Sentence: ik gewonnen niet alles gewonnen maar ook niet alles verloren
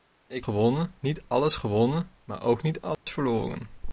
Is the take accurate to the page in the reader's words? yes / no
yes